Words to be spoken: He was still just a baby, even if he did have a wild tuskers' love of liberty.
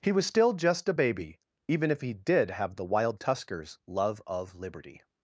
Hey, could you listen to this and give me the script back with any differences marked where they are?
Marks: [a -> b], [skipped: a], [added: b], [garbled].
He was still just a baby, even if he did have [a -> the] wild tuskers' love of liberty.